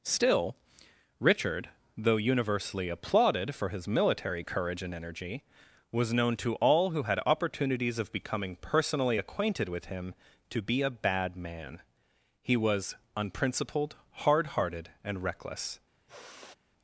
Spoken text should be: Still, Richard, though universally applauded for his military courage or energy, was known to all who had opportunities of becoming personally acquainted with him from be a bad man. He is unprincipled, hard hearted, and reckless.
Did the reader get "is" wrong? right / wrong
wrong